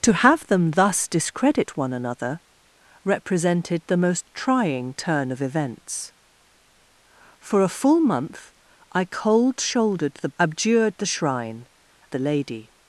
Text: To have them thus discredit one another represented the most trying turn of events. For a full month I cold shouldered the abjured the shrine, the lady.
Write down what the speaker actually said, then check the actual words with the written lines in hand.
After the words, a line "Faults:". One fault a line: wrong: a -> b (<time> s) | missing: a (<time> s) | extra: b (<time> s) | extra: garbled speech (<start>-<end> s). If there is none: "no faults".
To have them thus discredit one another represented the most trying turn of events. For a full month I cold shouldered the abjured the shrine, the lady.
Faults:
no faults